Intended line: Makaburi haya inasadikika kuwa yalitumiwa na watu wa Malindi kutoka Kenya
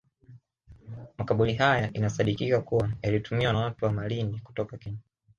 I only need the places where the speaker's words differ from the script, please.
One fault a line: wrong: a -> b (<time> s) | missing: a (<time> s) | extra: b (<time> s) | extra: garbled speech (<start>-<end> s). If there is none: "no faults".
missing: na (3.5 s)